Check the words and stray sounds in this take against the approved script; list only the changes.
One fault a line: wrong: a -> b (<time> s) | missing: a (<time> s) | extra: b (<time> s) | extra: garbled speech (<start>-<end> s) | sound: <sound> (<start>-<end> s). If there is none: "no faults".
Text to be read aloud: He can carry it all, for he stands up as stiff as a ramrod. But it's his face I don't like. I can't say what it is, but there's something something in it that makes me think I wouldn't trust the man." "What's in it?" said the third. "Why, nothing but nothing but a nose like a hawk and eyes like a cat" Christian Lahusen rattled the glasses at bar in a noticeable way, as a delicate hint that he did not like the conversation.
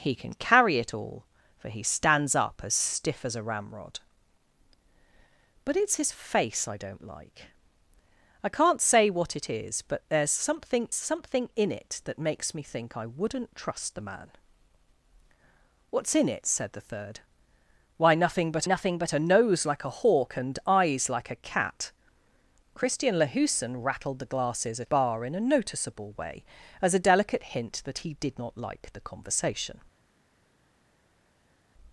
no faults